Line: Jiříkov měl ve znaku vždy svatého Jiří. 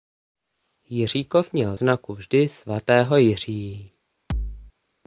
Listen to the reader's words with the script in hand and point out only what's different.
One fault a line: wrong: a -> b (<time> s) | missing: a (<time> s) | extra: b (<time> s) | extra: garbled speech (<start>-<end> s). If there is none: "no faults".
missing: ve (1.8 s)